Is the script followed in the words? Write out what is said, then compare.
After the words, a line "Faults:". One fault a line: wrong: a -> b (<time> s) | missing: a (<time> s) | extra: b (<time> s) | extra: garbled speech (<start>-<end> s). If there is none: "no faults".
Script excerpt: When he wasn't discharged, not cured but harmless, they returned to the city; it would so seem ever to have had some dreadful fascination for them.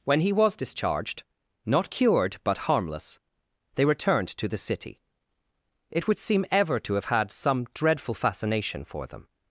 When he was discharged, not cured but harmless, they returned to the city; it would seem ever to have had some dreadful fascination for them.
Faults:
wrong: wasn't -> was (0.3 s)
missing: so (6.2 s)